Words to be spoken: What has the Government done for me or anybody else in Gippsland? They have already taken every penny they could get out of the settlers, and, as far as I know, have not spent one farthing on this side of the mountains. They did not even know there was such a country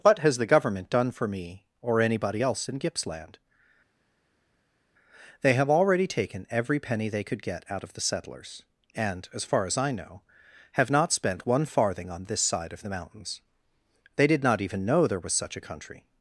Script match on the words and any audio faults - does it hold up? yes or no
yes